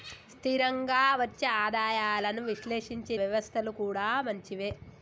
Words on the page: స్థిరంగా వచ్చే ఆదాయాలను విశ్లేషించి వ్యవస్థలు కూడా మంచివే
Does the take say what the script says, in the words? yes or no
yes